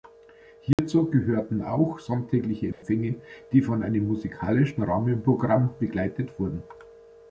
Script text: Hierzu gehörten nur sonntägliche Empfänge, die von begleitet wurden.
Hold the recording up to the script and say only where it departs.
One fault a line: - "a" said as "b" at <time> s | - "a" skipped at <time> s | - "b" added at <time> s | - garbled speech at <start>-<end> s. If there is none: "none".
- "nur" said as "auch" at 1.6 s
- "einem musikalischen Rahmenprogramm" added at 3.8 s